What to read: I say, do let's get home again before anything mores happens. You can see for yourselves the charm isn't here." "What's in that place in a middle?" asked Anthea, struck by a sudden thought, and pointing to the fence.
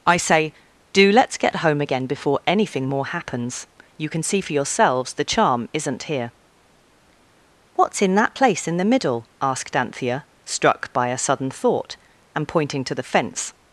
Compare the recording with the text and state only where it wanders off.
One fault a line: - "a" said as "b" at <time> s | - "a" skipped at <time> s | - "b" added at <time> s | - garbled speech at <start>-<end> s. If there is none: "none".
- "mores" said as "more" at 2.8 s
- "a" said as "the" at 8.8 s